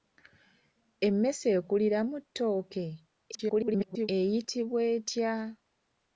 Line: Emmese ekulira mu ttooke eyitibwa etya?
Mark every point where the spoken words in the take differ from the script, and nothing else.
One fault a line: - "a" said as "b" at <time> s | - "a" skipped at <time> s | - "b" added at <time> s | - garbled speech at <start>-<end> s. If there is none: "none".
- garbled speech at 3.3-4.1 s